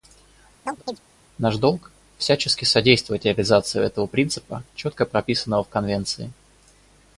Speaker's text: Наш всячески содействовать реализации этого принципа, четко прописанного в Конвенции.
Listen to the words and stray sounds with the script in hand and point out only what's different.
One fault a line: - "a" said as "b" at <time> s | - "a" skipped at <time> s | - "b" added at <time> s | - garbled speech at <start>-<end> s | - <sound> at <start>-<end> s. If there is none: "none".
- chirp at 0.7-1.0 s
- "долг" added at 1.6 s